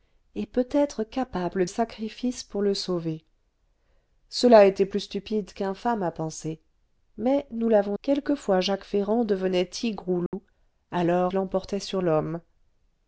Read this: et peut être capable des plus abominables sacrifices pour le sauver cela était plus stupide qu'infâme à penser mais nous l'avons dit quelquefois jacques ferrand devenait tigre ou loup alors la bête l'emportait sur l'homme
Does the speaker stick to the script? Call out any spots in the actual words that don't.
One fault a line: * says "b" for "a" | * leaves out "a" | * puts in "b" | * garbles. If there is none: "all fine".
* leaves out "des plus abominables"
* leaves out "dit"
* leaves out "la bête"